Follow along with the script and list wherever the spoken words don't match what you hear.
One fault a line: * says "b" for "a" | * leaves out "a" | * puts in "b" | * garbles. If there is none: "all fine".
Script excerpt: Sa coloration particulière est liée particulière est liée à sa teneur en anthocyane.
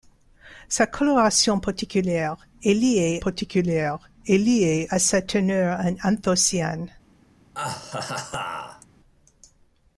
all fine